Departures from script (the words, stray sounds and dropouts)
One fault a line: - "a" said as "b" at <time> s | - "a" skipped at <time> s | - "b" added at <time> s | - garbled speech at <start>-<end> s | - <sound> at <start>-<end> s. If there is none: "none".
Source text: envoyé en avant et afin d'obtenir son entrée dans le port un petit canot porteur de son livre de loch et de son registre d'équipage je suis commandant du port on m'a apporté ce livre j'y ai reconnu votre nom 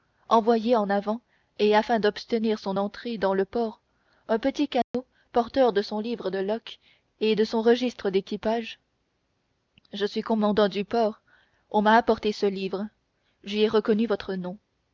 - dropout at 4.8-4.9 s